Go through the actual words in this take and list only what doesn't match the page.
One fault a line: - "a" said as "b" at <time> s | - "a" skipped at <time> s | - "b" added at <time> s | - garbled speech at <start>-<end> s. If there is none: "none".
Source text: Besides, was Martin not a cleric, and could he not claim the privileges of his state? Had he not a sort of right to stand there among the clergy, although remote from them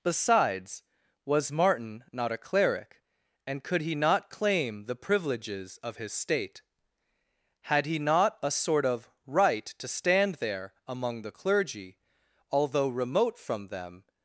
none